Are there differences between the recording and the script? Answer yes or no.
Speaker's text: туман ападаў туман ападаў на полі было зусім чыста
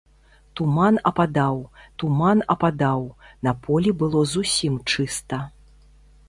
no